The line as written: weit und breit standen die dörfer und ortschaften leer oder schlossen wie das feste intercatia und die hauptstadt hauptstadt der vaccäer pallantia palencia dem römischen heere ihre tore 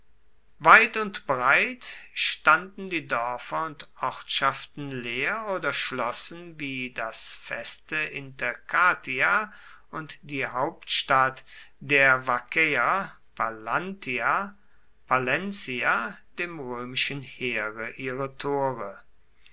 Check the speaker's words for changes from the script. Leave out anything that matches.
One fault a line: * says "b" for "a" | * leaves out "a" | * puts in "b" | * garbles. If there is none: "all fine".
* leaves out "hauptstadt"